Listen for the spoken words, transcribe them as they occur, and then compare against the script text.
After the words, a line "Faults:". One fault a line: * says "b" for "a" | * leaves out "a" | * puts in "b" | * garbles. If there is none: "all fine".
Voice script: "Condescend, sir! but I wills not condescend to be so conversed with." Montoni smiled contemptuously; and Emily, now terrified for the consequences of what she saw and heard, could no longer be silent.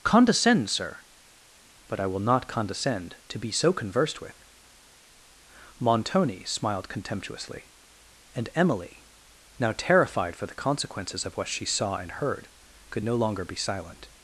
"Condescend, sir! but I will not condescend to be so conversed with." Montoni smiled contemptuously; and Emily, now terrified for the consequences of what she saw and heard, could no longer be silent.
Faults:
* says "will" for "wills"